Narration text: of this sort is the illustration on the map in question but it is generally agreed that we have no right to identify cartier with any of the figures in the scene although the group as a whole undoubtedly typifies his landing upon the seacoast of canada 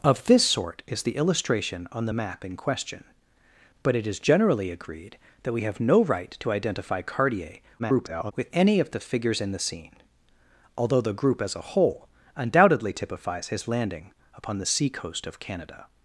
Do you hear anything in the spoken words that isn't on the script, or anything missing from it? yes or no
yes